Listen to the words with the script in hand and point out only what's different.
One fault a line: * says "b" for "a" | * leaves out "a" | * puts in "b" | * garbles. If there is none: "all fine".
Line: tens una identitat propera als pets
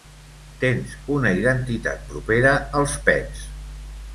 all fine